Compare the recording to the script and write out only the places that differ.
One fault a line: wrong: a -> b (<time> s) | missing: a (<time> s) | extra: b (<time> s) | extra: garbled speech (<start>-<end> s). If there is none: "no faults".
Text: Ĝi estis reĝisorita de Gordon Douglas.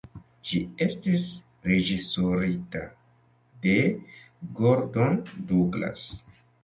no faults